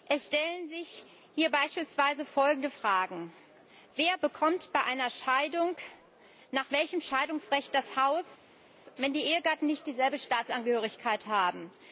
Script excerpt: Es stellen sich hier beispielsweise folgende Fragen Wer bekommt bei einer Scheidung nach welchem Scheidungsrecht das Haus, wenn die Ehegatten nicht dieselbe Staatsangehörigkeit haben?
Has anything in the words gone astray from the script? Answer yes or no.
no